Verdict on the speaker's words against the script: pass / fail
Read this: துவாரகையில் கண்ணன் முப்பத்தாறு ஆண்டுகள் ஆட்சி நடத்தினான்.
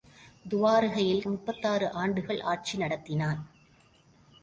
fail